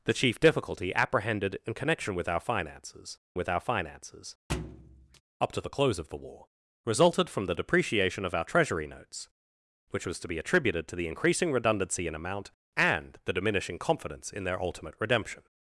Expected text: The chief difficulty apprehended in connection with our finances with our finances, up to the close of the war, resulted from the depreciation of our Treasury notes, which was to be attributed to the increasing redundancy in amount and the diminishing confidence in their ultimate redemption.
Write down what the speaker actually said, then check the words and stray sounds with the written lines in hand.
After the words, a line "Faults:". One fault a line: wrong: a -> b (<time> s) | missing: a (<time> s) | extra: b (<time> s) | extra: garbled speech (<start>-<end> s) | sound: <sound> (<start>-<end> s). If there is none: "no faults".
The chief difficulty apprehended in connection with our finances with our finances, up to the close of the war, resulted from the depreciation of our Treasury notes, which was to be attributed to the increasing redundancy in amount and the diminishing confidence in their ultimate redemption.
Faults:
sound: thud (4.5-5.2 s)